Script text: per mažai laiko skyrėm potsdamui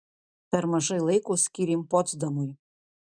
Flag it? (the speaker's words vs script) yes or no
no